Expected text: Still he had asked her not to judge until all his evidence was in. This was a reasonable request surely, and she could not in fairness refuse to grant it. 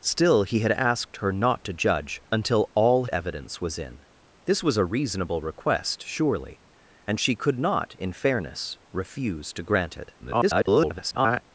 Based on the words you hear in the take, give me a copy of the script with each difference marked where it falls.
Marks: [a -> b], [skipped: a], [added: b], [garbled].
Still he had asked her not to judge until all [skipped: his] evidence was in. This was a reasonable request surely, and she could not in fairness refuse to grant it. [garbled]